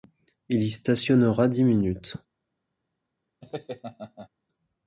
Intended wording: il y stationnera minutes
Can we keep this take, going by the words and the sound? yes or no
no